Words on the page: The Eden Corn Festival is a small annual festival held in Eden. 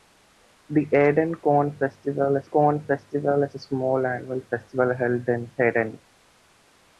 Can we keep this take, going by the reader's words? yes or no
no